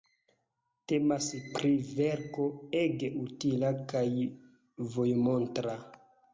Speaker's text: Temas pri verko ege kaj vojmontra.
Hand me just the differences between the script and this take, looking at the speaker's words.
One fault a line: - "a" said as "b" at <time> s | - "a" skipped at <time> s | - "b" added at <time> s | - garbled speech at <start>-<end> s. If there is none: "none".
- "utila" added at 3.3 s